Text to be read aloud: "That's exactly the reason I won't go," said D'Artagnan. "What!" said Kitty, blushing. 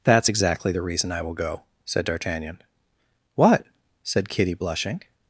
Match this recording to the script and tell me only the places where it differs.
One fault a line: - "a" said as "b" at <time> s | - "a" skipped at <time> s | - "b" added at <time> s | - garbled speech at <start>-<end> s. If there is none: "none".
- "won't" said as "will" at 1.2 s